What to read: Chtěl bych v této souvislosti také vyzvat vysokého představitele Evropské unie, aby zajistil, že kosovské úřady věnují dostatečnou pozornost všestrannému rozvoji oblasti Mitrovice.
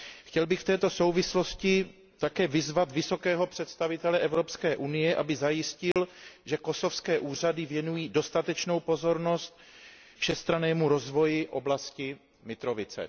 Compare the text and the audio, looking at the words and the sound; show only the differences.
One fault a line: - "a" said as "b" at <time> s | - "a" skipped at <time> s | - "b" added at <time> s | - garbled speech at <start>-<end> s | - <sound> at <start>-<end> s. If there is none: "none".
- dropout at 5.9-6.0 s